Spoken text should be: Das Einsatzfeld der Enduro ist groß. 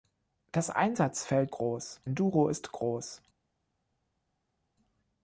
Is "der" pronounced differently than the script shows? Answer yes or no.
yes